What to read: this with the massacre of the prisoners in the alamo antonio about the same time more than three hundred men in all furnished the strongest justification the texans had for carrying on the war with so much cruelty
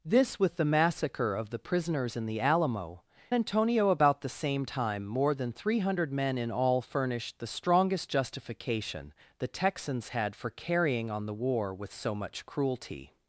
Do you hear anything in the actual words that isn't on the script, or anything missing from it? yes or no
no